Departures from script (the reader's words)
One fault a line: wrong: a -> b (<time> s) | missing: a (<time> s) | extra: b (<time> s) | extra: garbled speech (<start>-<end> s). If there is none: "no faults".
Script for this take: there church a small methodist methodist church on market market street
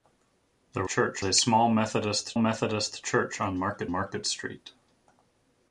no faults